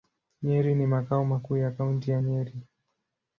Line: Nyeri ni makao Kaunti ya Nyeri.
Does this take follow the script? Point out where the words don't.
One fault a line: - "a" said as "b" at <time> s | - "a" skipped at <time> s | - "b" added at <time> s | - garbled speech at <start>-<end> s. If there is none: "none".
- "makuu ya" added at 1.2 s